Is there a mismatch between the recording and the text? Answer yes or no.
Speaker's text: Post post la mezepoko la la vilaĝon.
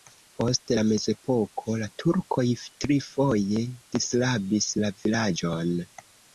yes